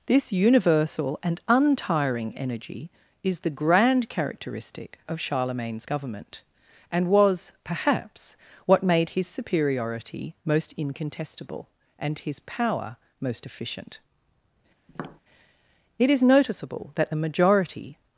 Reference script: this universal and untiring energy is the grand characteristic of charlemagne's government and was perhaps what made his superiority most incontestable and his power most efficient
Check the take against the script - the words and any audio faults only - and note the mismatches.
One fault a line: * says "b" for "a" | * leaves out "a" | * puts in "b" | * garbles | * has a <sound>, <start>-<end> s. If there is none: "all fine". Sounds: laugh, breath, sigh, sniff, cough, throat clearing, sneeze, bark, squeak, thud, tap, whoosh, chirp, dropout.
* has a tap, 14.9-15.2 s
* puts in "it is noticeable that the majority"